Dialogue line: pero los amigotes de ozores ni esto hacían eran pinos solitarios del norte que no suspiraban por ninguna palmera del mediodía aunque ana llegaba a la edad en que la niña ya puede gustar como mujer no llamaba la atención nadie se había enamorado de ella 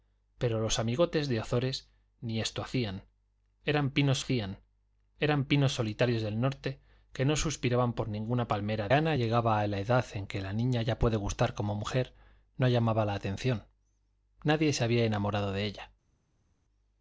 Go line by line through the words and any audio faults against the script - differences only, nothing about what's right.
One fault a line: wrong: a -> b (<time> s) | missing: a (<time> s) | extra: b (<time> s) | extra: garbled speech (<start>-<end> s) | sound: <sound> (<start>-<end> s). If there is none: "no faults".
extra: hacían eran pinos (4.2 s)
missing: del mediodía aunque (8.9 s)